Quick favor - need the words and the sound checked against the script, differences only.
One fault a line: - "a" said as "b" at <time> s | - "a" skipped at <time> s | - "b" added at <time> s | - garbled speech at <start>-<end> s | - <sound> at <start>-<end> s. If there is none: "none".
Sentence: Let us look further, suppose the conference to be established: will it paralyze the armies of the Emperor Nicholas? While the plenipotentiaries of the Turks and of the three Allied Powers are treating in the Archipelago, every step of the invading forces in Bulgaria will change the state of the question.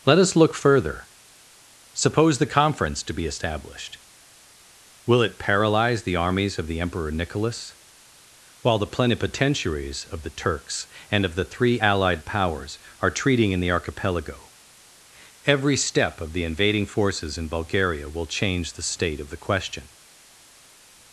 none